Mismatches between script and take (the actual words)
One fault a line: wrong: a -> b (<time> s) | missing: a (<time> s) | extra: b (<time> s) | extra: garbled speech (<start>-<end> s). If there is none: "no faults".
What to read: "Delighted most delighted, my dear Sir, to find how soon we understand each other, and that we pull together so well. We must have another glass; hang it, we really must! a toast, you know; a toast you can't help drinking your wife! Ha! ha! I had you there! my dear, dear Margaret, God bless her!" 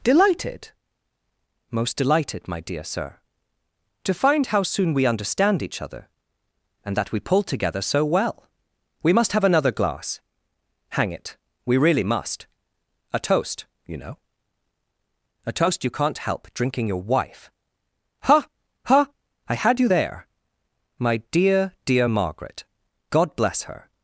no faults